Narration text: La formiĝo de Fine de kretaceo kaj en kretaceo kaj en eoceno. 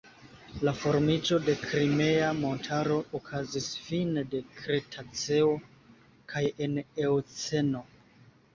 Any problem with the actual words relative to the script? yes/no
yes